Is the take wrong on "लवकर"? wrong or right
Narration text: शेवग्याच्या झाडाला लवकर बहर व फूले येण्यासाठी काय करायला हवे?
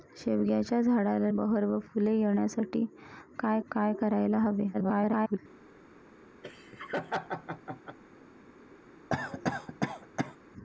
wrong